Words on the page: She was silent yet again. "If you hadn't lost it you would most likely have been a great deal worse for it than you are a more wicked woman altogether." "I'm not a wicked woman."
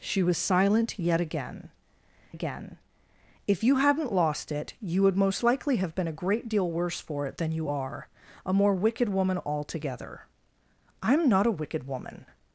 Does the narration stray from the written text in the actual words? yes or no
yes